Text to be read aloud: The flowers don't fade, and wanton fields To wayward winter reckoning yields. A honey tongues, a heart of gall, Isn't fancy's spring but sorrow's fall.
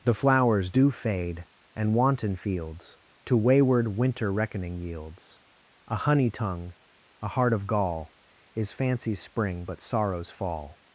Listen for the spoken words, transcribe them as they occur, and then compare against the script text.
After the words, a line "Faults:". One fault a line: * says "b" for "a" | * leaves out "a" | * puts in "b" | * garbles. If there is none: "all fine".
The flowers do fade, and wanton fields To wayward winter reckoning yields. A honey tongue, a heart of gall, Is fancy's spring but sorrow's fall.
Faults:
* says "do" for "don't"
* says "tongue" for "tongues"
* says "Is" for "Isn't"